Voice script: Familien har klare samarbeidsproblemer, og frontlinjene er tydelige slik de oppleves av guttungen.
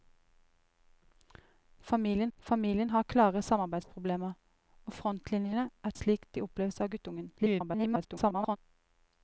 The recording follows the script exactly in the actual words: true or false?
false